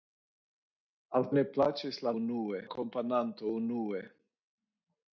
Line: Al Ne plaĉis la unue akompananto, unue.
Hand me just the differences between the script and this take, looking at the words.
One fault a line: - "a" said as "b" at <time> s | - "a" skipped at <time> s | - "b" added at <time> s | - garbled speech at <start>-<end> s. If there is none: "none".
none